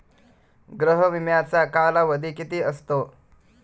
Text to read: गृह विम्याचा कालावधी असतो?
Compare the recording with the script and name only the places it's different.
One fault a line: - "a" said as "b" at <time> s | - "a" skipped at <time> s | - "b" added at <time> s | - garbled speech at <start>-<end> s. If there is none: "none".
- "किती" added at 2.3 s